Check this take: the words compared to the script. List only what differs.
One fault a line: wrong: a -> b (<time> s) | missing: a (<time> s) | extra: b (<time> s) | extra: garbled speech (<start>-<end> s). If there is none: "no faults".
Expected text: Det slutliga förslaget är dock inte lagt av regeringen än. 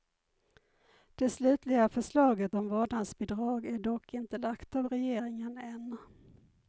extra: om vårdnadsbidrag (2.5 s)